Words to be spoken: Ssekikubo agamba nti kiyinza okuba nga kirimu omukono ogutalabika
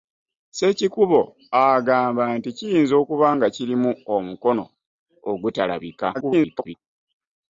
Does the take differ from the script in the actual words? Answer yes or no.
yes